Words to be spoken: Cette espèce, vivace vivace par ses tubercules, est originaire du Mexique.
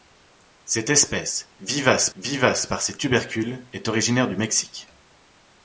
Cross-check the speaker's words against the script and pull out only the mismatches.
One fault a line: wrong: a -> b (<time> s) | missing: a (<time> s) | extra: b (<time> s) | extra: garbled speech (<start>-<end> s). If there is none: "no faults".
no faults